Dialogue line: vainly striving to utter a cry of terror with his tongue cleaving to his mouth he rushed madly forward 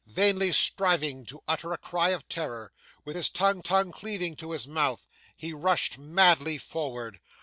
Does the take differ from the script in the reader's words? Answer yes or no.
yes